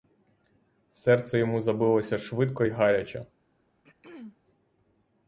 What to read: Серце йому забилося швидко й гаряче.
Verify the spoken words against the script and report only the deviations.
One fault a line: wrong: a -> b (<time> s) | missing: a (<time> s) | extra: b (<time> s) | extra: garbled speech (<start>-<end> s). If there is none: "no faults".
no faults